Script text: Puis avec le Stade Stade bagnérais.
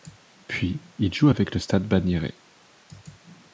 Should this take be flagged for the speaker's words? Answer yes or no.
yes